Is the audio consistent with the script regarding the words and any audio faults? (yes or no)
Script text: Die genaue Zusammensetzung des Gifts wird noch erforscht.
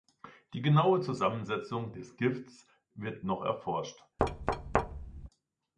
no